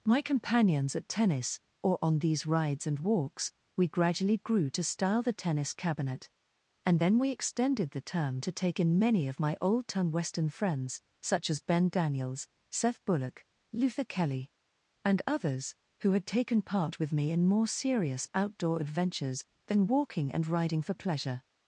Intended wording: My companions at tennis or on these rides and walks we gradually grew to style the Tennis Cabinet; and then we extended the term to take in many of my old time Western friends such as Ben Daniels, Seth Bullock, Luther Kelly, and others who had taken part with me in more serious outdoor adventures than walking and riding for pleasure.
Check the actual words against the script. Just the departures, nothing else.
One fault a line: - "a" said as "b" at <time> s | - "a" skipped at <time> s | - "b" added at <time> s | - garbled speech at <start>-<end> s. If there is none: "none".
none